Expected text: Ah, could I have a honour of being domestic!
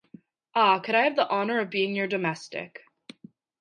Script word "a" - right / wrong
wrong